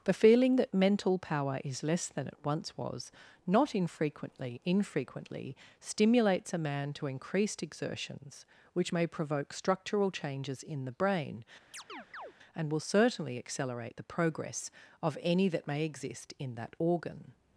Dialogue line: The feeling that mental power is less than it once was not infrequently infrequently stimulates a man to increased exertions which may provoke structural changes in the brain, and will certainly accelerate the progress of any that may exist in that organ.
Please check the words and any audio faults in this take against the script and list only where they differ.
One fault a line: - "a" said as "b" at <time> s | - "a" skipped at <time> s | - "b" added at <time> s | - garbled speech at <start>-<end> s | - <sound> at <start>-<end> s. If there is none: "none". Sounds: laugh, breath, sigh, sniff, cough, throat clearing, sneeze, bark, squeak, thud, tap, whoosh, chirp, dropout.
- chirp at 11.7-12.3 s